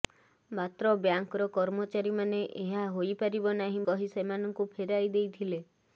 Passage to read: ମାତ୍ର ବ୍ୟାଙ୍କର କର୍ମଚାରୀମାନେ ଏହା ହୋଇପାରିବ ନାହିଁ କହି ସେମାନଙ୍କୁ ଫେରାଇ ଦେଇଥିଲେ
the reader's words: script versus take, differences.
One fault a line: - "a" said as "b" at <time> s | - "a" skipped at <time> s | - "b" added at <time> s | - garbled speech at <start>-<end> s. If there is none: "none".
none